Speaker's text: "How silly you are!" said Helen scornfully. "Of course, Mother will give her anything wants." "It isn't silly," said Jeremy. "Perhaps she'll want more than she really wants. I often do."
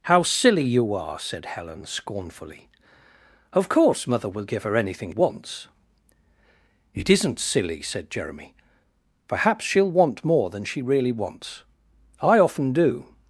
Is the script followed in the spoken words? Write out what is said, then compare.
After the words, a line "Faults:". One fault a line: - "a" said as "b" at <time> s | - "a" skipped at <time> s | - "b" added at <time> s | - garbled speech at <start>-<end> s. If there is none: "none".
"How silly you are!" said Helen scornfully. "Of course, Mother will give her anything wants." "It isn't silly," said Jeremy. "Perhaps she'll want more than she really wants. I often do."
Faults:
none